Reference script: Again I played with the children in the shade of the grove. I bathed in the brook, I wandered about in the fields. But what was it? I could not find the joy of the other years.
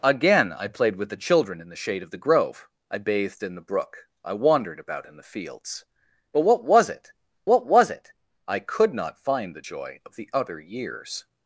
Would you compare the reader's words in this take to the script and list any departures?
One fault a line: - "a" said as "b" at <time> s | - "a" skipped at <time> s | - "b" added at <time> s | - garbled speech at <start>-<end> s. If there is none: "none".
- "what was it" added at 7.4 s